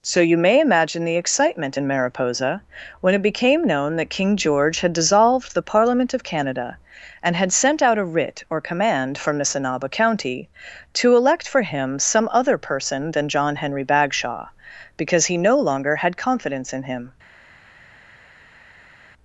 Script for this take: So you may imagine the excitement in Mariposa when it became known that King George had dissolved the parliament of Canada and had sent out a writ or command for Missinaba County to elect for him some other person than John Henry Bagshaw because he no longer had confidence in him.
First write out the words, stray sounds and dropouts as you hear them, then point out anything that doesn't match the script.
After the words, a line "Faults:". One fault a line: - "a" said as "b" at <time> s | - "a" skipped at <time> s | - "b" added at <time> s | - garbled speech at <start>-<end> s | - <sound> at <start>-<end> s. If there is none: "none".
So you may imagine the excitement in Mariposa when it became known that King George had dissolved the parliament of Canada and had sent out a writ or command from Missinaba County to elect for him some other person than John Henry Bagshaw because he no longer had confidence in him.
Faults:
- "for" said as "from" at 9.2 s